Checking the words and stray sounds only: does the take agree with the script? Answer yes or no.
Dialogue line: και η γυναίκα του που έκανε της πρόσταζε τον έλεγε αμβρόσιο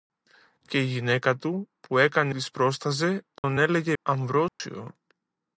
no